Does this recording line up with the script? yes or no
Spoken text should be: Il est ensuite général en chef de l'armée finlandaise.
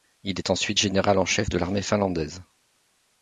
yes